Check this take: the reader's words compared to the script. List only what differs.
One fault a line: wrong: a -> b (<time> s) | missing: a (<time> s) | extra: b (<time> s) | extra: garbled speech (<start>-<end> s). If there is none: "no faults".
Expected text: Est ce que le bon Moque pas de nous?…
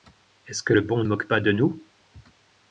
no faults